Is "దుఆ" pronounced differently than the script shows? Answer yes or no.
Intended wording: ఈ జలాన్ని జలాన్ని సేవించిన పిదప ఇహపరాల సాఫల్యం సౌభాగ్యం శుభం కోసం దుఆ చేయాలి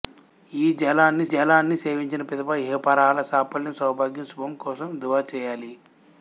no